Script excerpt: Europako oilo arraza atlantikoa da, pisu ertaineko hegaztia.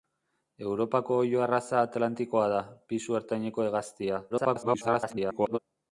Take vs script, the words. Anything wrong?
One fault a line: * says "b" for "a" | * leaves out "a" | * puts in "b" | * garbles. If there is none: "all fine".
* garbles